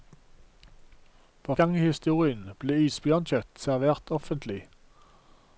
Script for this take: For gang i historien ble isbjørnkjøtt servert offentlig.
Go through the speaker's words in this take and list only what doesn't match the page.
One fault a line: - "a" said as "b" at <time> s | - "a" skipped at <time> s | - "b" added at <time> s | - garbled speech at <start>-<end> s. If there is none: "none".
none